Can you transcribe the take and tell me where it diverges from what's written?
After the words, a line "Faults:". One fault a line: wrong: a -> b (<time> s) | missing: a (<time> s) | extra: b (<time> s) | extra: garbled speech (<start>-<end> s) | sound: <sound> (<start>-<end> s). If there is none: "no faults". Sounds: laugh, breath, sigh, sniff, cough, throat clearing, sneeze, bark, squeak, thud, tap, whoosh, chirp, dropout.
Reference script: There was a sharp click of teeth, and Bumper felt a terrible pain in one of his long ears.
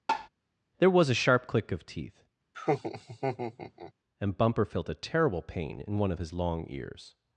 There was a sharp click of teeth, and Bumper felt a terrible pain in one of his long ears.
Faults:
sound: tap (0.1-0.3 s)
sound: laugh (2.5-3.9 s)